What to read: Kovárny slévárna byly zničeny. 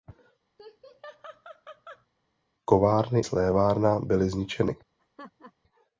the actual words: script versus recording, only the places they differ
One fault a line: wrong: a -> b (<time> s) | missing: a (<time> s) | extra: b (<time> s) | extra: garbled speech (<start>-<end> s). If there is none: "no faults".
no faults